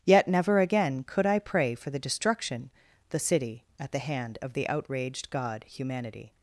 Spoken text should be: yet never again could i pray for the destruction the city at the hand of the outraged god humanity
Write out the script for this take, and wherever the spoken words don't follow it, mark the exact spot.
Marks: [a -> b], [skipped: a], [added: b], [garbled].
yet never again could i pray for the destruction the city at the hand of the outraged god humanity